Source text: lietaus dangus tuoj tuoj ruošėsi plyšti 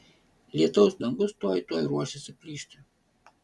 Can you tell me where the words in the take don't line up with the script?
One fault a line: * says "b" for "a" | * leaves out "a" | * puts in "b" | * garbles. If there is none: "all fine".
all fine